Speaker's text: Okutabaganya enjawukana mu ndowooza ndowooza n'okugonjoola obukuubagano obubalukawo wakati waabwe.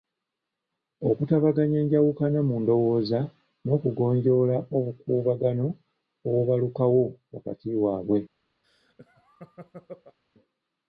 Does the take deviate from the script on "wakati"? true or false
false